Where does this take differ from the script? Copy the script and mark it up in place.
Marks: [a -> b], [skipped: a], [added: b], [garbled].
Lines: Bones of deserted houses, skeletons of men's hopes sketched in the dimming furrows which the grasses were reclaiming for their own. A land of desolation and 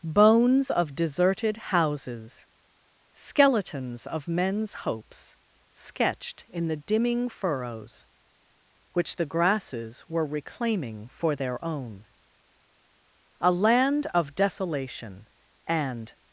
Bones of deserted houses, skeletons of men's hopes sketched in the dimming furrows which the grasses were reclaiming for their own. A land of desolation and